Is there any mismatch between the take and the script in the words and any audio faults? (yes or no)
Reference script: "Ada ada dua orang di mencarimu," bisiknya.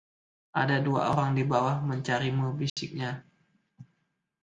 yes